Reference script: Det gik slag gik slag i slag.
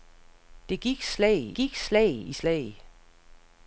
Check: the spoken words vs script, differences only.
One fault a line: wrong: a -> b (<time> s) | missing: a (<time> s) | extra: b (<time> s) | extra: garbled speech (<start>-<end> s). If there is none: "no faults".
no faults